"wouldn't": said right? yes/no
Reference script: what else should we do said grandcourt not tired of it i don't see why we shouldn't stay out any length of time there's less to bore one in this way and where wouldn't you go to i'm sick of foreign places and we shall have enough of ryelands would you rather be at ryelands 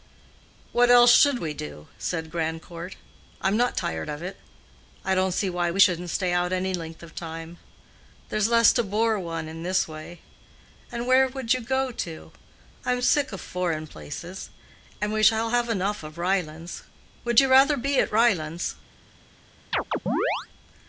no